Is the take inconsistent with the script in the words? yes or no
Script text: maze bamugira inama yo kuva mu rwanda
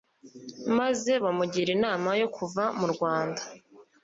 no